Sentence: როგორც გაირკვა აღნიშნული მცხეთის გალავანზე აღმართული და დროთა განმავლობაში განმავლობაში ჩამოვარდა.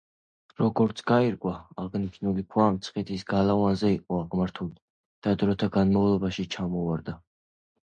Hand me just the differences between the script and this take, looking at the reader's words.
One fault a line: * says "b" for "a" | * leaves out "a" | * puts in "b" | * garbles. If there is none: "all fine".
* puts in "ქვა"
* puts in "იყო"
* leaves out "განმავლობაში"